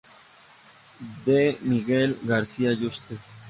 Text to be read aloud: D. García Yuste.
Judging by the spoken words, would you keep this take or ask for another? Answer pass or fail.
fail